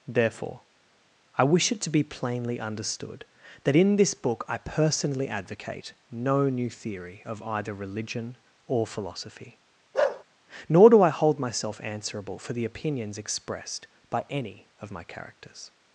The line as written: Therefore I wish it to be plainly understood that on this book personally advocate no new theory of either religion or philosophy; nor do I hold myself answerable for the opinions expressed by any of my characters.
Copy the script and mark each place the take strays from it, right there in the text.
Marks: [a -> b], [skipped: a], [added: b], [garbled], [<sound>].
Therefore I wish it to be plainly understood that [on -> in] this book [added: I] personally advocate no new theory of either religion or philosophy; [bark] nor do I hold myself answerable for the opinions expressed by any of my characters.